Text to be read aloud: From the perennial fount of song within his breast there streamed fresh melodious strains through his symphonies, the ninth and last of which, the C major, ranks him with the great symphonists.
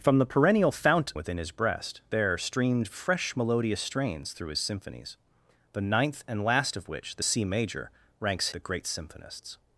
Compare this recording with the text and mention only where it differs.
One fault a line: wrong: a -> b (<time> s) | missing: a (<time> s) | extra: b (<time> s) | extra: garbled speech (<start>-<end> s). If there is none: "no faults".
missing: of song (1.1 s)
missing: him with (8.5 s)